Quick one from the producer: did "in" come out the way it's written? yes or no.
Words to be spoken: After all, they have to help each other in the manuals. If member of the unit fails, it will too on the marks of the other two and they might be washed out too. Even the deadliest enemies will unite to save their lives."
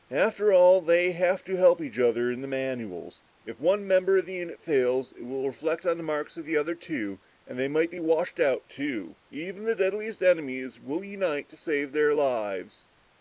yes